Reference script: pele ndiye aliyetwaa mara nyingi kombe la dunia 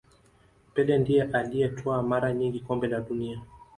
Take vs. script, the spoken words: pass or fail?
pass